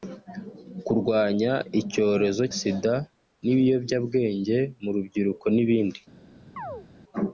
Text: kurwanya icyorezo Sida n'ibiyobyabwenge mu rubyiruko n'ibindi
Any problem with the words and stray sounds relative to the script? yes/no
yes